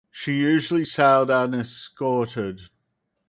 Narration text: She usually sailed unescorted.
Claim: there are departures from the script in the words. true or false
false